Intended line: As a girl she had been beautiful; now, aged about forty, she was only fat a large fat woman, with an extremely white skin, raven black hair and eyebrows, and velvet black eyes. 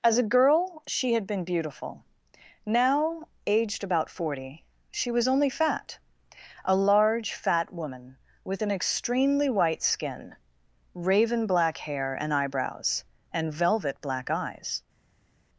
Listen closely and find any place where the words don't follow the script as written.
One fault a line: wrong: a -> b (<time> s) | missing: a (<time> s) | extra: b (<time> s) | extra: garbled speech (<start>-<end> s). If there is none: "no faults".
no faults